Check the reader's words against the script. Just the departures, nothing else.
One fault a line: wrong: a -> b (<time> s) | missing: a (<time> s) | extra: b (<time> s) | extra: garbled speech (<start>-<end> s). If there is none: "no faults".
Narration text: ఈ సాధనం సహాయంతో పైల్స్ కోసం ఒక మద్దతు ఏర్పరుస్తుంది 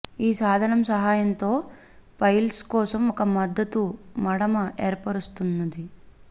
extra: మడమ (4.2 s)